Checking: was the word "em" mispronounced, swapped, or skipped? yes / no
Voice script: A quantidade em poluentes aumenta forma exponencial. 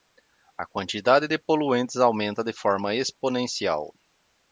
yes